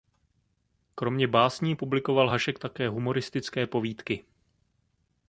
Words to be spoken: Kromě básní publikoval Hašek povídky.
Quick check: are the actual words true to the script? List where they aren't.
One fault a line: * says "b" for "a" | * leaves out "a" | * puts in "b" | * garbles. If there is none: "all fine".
* puts in "také humoristické"